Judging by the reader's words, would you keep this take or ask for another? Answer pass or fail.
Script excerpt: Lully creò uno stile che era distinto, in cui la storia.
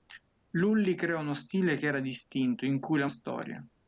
pass